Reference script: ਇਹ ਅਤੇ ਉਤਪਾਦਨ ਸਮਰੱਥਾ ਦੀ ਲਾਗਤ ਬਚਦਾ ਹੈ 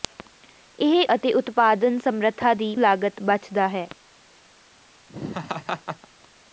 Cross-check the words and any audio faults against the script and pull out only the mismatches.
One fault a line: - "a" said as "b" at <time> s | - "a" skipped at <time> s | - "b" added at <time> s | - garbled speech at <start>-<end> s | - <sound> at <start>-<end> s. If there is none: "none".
- laugh at 5.1-6.1 s